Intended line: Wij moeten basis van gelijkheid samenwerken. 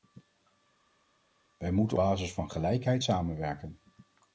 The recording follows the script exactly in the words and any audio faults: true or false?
true